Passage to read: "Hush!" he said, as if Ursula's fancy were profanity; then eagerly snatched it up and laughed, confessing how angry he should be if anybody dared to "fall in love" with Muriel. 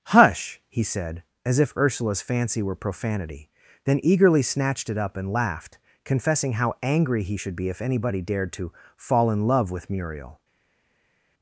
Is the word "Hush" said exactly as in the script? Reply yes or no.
yes